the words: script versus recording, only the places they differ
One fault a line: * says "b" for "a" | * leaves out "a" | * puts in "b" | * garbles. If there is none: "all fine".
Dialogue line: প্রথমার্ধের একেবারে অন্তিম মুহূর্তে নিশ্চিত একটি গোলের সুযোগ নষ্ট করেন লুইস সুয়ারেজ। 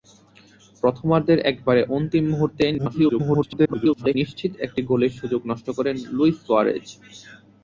* garbles